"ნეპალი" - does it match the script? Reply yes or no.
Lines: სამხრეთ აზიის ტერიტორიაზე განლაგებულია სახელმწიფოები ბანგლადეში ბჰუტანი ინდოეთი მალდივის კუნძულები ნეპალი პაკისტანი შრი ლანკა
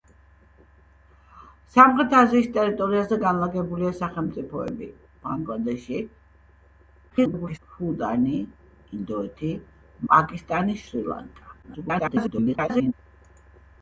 no